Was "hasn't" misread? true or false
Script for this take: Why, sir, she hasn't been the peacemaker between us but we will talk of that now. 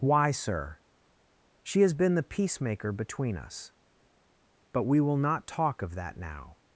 true